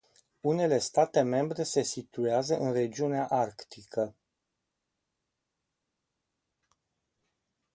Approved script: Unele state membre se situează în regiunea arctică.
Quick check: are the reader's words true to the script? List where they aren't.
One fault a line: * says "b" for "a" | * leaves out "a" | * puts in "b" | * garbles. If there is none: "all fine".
all fine